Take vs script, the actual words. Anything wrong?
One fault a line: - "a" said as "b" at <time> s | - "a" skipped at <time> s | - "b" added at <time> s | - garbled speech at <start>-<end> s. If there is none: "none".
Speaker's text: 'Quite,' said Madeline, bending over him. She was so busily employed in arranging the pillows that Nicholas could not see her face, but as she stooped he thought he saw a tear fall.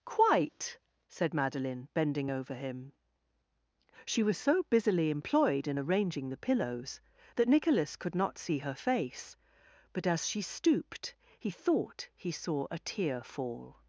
none